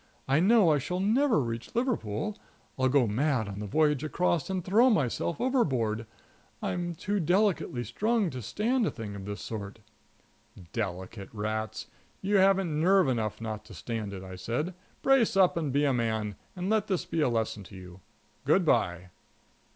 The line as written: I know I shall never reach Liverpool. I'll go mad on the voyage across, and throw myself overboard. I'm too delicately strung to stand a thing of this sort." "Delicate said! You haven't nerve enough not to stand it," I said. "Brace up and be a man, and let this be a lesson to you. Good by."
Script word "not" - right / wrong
right